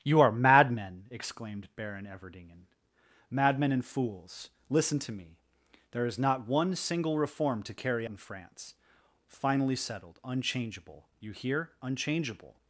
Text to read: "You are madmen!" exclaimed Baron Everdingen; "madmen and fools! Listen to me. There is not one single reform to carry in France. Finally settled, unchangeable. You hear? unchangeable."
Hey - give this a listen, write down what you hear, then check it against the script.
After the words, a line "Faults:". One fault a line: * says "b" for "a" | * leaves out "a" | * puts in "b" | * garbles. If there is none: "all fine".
"You are madmen!" exclaimed Baron Everdingen; "madmen and fools! Listen to me. There is not one single reform to carry in France. Finally settled, unchangeable. You hear? unchangeable."
Faults:
all fine